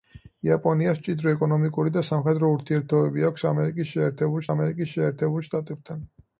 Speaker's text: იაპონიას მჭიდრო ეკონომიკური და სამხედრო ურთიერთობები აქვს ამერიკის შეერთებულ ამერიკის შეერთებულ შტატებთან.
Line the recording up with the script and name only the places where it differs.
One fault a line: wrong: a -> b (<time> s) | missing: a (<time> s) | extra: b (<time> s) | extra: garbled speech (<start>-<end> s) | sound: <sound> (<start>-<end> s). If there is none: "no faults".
no faults